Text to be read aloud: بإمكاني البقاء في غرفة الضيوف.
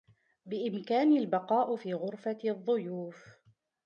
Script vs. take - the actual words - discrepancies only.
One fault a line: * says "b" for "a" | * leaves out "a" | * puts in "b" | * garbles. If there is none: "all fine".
all fine